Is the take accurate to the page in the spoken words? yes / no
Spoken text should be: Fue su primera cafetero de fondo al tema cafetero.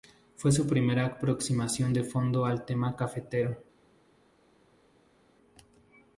no